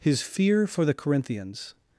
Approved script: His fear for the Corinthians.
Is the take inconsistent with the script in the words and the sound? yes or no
no